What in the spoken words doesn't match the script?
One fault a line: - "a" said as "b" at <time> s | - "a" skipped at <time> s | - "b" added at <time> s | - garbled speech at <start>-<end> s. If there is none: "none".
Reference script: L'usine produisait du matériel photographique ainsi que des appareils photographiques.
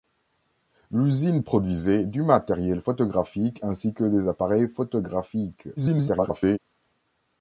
- garbled speech at 5.8-6.6 s